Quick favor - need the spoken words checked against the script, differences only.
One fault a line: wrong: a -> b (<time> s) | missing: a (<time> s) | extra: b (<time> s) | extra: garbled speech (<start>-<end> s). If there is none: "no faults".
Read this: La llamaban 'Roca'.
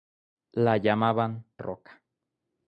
no faults